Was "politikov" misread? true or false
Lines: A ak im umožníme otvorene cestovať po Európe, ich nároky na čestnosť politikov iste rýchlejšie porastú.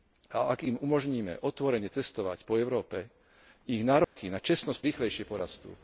true